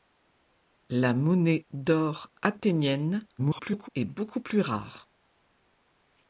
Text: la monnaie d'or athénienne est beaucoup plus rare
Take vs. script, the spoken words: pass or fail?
fail